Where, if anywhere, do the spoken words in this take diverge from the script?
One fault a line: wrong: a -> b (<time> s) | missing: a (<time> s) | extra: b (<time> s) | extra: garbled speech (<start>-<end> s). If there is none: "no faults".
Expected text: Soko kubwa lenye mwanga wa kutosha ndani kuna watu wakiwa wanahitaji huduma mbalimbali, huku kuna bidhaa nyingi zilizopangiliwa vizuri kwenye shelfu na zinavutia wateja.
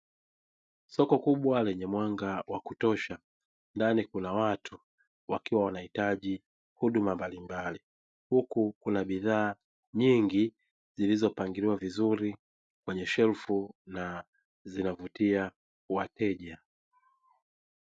no faults